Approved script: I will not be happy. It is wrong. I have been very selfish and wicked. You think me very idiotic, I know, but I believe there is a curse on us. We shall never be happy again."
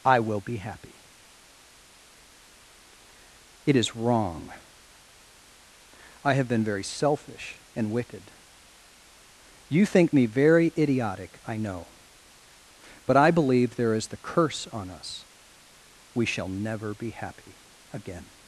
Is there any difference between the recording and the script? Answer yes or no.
yes